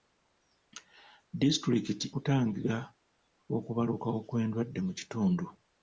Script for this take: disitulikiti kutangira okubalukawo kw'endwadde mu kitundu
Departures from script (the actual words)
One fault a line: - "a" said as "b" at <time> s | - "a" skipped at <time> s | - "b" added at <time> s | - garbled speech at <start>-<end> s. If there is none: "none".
none